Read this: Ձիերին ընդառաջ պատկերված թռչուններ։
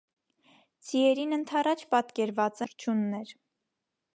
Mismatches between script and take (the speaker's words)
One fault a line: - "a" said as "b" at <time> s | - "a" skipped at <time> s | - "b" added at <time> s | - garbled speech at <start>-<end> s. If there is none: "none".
none